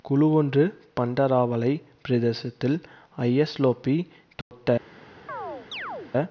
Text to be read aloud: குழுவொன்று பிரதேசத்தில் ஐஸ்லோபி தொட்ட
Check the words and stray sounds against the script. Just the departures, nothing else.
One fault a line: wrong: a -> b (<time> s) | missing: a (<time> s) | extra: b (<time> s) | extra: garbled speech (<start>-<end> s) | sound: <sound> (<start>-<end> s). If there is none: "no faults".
extra: பண்டராவளை (1.0 s)
sound: dropout (4.4-4.5 s)
sound: chirp (5.3-6.1 s)